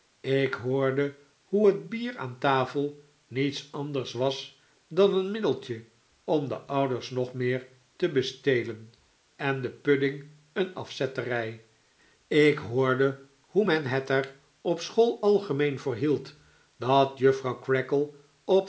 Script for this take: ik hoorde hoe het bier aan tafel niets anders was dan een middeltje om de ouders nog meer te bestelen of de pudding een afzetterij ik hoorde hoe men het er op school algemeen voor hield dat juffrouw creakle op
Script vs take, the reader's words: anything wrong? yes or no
yes